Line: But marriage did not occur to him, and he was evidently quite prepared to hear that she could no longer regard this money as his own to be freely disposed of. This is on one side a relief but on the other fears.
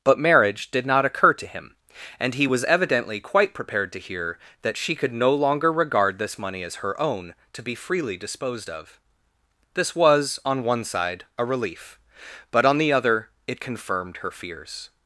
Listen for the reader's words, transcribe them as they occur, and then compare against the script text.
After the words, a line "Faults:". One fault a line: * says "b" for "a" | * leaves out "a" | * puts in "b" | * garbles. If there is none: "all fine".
But marriage did not occur to him, and he was evidently quite prepared to hear that she could no longer regard this money as her own to be freely disposed of. This was on one side a relief but on the other it confirmed her fears.
Faults:
* says "her" for "his"
* says "was" for "is"
* puts in "it confirmed her"